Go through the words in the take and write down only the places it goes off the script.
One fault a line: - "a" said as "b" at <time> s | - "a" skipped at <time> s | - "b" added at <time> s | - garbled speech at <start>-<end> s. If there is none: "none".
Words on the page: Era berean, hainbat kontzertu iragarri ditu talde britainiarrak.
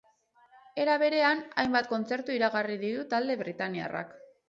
none